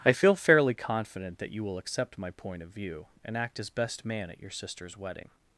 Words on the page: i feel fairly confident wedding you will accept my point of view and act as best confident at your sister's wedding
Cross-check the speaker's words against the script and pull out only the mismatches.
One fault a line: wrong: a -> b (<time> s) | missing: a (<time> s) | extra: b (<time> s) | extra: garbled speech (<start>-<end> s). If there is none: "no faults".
wrong: wedding -> that (1.4 s)
wrong: confident -> man (4.0 s)